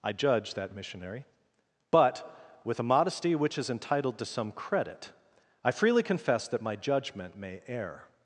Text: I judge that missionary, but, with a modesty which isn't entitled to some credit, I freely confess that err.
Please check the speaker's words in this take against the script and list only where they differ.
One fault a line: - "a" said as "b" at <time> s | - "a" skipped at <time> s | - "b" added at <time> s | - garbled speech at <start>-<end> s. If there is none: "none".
- "isn't" said as "is" at 3.6 s
- "my judgment may" added at 6.6 s